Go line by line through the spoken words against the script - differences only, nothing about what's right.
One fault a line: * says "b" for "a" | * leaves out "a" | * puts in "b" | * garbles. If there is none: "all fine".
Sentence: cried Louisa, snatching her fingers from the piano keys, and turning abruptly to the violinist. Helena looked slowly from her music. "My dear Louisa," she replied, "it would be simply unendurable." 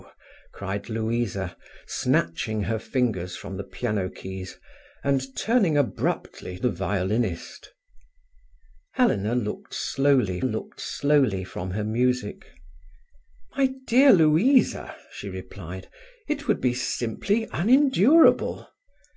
* leaves out "to"
* puts in "looked slowly"